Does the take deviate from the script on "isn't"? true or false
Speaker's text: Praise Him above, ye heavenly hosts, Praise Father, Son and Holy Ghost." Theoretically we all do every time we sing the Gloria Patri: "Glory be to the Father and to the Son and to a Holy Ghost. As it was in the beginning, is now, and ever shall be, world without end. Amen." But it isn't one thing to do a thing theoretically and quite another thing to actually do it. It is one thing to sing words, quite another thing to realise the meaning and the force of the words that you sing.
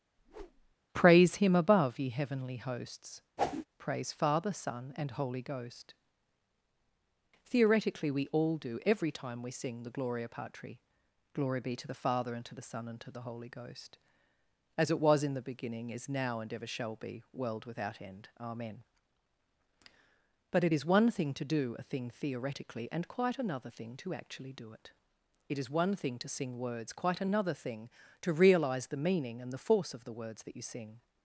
true